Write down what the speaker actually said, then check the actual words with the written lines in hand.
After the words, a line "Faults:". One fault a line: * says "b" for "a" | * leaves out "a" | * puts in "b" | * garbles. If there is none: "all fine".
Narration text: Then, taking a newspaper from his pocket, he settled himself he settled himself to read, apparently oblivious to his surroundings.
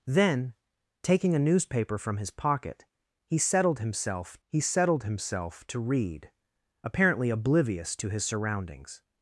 Then, taking a newspaper from his pocket, he settled himself he settled himself to read, apparently oblivious to his surroundings.
Faults:
all fine